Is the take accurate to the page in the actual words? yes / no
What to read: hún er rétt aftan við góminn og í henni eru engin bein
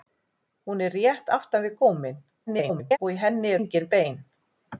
no